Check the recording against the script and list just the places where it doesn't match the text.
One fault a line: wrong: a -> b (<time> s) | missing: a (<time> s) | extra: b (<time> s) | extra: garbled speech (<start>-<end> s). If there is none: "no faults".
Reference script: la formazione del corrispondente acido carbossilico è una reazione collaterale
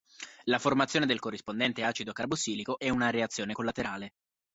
no faults